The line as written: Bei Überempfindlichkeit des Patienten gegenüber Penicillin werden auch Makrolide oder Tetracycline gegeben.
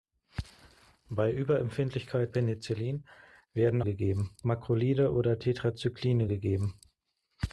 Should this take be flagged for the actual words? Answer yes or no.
yes